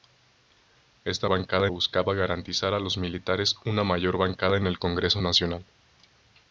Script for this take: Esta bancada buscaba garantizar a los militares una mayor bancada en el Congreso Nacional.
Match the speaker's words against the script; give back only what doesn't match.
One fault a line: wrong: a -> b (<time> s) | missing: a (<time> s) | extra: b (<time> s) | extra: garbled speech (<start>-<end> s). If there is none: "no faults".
no faults